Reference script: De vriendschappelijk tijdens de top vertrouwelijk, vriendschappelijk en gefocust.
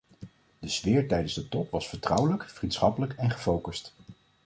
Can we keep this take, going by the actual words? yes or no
no